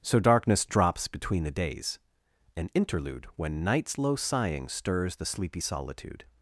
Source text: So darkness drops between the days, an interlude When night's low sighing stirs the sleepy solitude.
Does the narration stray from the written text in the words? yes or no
no